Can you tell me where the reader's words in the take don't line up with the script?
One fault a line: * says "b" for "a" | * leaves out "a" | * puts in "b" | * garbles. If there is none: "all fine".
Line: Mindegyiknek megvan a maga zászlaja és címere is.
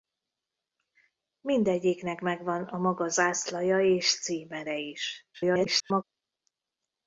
* garbles